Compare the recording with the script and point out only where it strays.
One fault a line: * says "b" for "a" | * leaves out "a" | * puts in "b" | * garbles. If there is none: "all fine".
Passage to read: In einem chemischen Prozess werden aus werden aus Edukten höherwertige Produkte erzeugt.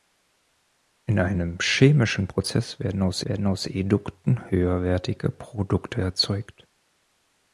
all fine